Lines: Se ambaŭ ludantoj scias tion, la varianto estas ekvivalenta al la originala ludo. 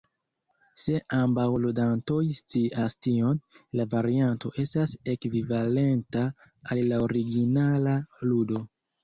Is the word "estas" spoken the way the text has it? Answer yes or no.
yes